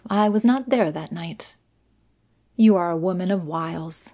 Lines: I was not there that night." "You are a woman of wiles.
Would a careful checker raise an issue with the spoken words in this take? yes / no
no